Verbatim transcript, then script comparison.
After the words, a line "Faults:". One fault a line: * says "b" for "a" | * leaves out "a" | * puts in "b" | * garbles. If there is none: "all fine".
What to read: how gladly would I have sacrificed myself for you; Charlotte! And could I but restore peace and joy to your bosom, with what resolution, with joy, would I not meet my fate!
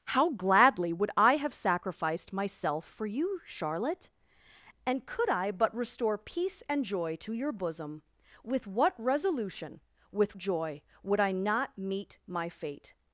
how gladly would I have sacrificed myself for you; Charlotte! And could I but restore peace and joy to your bosom, with what resolution, with joy, would I not meet my fate!
Faults:
all fine